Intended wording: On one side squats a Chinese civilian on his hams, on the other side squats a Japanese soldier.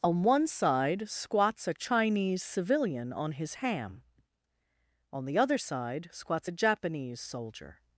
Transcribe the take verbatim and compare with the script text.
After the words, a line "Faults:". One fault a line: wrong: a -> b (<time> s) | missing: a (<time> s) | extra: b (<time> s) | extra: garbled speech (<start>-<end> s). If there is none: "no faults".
On one side squats a Chinese civilian on his ham, on the other side squats a Japanese soldier.
Faults:
wrong: hams -> ham (3.5 s)